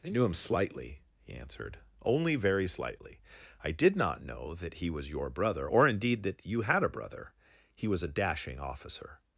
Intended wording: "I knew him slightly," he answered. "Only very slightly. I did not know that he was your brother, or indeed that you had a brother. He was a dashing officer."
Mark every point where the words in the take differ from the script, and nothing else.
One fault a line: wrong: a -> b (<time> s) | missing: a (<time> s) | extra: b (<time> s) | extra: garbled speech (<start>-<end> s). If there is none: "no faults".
no faults